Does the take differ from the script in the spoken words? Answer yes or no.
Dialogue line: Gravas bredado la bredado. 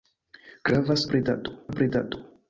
no